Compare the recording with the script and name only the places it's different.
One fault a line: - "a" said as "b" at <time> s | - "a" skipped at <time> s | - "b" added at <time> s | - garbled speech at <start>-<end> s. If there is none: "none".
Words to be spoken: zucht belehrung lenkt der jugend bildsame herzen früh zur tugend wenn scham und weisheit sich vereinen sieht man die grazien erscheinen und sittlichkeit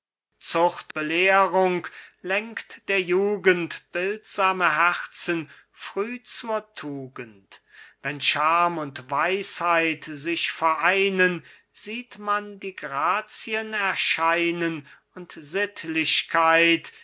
none